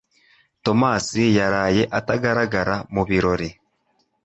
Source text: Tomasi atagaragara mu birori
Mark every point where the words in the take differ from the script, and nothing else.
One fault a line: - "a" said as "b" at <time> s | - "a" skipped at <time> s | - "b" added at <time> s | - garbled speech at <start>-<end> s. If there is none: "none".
- "yaraye" added at 1.4 s